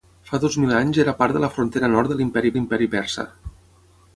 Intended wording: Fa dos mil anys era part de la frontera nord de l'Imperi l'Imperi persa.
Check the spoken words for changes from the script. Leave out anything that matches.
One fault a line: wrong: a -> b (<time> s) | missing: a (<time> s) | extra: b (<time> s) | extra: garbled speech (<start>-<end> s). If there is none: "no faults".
no faults